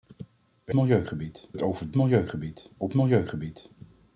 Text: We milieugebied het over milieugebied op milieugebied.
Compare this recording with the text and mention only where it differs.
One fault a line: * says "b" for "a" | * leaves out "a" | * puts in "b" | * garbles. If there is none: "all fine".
all fine